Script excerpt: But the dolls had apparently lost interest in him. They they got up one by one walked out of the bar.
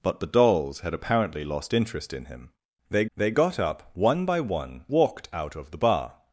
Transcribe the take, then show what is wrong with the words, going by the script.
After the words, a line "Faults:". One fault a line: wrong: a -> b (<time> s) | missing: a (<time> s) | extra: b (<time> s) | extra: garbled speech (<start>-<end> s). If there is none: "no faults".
But the dolls had apparently lost interest in him. They they got up one by one walked out of the bar.
Faults:
no faults